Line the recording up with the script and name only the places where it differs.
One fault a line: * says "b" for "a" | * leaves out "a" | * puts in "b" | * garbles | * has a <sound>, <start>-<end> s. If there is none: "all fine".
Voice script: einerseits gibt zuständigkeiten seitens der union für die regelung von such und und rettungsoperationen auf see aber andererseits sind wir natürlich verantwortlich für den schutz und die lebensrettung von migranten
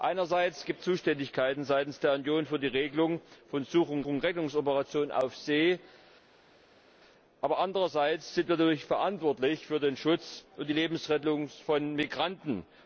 all fine